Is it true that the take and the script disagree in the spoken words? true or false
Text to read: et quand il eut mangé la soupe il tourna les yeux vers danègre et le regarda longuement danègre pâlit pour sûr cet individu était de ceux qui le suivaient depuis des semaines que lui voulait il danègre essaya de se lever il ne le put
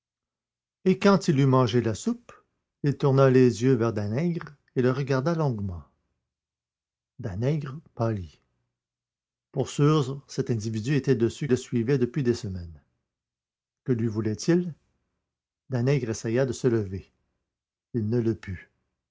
true